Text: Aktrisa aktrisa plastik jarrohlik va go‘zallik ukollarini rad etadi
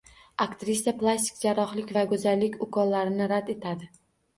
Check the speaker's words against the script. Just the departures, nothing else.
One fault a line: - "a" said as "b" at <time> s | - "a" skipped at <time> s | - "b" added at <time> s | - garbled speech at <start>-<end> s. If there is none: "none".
- "aktrisa" skipped at 0.9 s